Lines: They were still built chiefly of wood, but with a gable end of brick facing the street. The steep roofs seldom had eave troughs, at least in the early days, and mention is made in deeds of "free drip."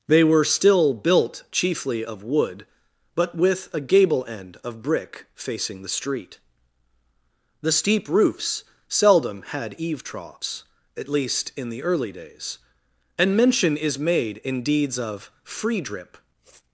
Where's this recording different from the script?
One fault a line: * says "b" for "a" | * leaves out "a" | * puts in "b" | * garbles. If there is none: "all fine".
all fine